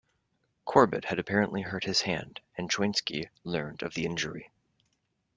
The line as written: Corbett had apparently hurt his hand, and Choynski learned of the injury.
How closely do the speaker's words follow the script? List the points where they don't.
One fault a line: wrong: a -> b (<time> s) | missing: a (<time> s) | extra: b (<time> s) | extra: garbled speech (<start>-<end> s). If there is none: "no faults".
no faults